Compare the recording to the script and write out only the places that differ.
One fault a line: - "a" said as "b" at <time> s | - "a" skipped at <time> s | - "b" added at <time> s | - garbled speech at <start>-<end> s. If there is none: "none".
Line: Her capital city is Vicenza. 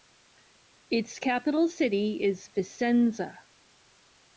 - "Her" said as "Its" at 0.9 s